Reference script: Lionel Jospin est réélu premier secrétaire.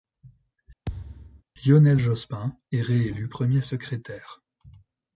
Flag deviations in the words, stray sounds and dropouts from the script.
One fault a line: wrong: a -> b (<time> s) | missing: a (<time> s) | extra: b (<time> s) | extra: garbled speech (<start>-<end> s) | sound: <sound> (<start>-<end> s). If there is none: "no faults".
sound: thud (0.9-1.4 s)